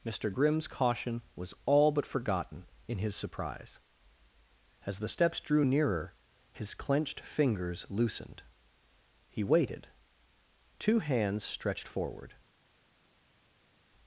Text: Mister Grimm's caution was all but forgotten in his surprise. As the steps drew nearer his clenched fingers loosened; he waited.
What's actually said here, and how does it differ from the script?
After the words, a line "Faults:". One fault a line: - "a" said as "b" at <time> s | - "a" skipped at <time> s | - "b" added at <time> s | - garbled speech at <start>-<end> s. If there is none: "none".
Mister Grimm's caution was all but forgotten in his surprise. As the steps drew nearer his clenched fingers loosened; he waited. Two hands stretched forward
Faults:
- "Two hands stretched forward" added at 10.8 s